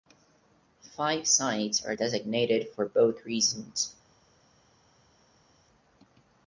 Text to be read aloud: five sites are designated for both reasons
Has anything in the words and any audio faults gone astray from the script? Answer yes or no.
no